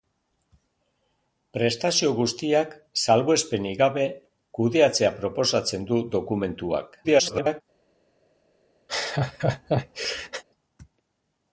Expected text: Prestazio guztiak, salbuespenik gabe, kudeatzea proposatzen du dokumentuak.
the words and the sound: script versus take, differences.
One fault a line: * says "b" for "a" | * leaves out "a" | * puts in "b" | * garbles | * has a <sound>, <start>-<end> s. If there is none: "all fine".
* garbles
* has a laugh, 8.9-10.4 s